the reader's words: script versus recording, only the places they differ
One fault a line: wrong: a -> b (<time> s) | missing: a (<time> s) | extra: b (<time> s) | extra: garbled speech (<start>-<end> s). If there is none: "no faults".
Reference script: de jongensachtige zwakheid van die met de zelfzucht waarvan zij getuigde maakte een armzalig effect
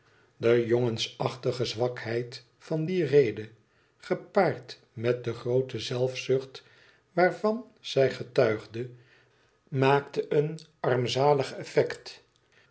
extra: rede gepaard (3.0 s)
extra: groote (5.3 s)